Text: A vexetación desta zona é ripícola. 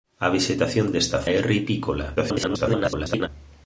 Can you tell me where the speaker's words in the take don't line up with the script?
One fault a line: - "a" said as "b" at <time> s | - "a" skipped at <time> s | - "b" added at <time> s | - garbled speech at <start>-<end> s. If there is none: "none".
- "zona" skipped at 1.2 s
- garbled speech at 2.2-3.3 s